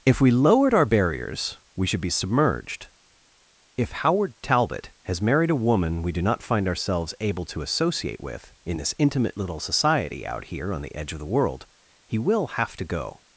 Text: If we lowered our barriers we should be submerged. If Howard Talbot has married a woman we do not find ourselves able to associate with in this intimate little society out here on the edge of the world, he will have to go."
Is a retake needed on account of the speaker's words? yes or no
no